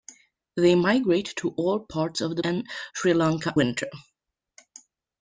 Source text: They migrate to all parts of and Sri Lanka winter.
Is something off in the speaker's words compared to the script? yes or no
no